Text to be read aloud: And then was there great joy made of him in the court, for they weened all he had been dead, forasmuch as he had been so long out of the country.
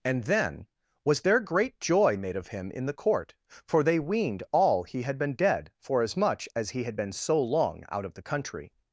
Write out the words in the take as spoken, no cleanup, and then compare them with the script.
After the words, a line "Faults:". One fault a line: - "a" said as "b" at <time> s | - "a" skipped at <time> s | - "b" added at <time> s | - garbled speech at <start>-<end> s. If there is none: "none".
And then was there great joy made of him in the court, for they weened all he had been dead, forasmuch as he had been so long out of the country.
Faults:
none